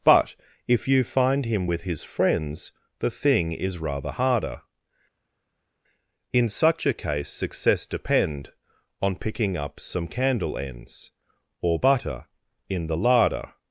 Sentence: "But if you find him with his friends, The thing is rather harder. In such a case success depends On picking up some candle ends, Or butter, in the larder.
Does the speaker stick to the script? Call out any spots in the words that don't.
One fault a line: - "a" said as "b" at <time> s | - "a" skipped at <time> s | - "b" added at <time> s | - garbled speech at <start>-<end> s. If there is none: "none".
- "depends" said as "depend" at 7.8 s